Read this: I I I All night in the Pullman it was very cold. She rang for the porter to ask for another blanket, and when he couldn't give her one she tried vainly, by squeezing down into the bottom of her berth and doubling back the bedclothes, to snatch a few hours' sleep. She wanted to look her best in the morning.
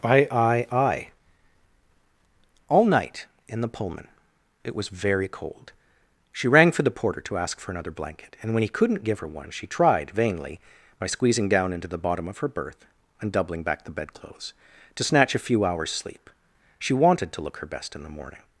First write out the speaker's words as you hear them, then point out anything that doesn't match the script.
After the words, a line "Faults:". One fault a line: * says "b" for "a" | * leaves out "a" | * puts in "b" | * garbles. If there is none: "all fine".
I I I All night in the Pullman it was very cold. She rang for the porter to ask for another blanket, and when he couldn't give her one she tried vainly, by squeezing down into the bottom of her berth and doubling back the bedclothes, to snatch a few hours' sleep. She wanted to look her best in the morning.
Faults:
all fine